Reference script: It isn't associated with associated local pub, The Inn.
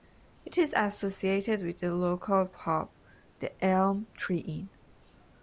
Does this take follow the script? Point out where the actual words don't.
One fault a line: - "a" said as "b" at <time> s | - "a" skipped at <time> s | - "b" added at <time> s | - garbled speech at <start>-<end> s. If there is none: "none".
- "isn't" said as "is" at 0.6 s
- "associated" said as "the" at 1.8 s
- "Elm Tree" added at 3.6 s